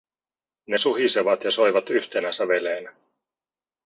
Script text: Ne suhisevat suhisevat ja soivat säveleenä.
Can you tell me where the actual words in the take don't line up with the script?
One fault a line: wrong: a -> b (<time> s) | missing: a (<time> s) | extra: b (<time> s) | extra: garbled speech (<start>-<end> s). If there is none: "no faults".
missing: suhisevat (1.4 s)
extra: yhtenä (1.9 s)